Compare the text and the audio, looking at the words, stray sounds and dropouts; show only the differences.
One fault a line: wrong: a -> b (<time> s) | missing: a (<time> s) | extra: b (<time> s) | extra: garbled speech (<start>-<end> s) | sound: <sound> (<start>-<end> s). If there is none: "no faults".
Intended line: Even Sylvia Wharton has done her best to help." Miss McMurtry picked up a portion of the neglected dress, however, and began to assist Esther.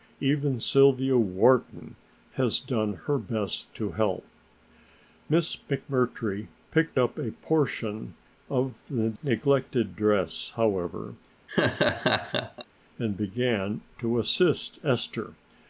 sound: laugh (11.5-12.7 s)